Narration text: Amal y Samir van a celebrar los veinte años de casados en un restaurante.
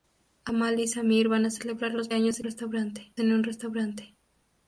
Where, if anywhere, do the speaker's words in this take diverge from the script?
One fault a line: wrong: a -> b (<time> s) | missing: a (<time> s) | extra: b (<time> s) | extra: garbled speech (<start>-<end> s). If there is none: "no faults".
missing: veinte (2.1 s)
wrong: casados -> restaurante (2.4 s)